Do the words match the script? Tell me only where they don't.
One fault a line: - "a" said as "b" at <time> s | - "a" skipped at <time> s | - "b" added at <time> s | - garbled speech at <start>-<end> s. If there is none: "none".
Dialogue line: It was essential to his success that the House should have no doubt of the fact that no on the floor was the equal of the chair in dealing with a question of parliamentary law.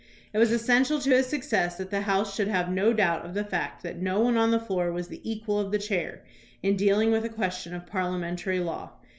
- "one" added at 4.2 s